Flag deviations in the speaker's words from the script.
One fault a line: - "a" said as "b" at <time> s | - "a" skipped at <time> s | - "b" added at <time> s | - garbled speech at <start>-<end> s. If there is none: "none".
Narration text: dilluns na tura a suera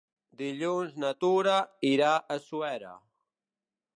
- "irà" added at 1.9 s